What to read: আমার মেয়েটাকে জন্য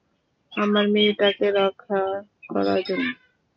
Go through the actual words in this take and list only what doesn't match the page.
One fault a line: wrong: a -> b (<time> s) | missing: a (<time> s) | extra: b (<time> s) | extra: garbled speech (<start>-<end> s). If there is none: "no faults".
extra: রক্ষা করার (1.6 s)